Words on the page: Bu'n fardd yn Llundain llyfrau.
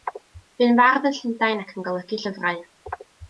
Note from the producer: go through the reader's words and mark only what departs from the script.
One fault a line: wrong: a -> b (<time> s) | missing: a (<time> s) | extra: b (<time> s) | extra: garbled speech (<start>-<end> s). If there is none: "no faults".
extra: ac yn golygu (1.6 s)